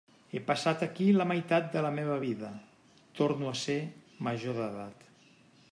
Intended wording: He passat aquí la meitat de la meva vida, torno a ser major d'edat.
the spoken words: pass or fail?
pass